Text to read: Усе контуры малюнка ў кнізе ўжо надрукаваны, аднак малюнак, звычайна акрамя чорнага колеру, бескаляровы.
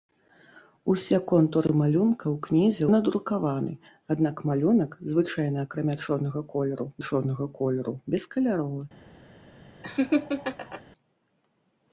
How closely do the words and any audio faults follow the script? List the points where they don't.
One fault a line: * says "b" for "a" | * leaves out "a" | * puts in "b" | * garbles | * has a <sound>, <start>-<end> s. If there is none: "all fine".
* leaves out "ўжо"
* puts in "чорнага колеру"
* has a laugh, 9.8-10.8 s